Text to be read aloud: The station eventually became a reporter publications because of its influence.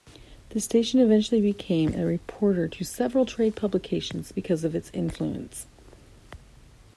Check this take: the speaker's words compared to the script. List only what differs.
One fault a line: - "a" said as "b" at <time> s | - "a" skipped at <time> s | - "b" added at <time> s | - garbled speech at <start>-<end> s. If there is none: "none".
- "to several trade" added at 2.7 s